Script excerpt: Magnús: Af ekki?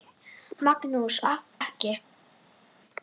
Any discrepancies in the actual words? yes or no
no